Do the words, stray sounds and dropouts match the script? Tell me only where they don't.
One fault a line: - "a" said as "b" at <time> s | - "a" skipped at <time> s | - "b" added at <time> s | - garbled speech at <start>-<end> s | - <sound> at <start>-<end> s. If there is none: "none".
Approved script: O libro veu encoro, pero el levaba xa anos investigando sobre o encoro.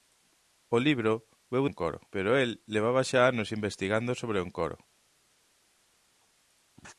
none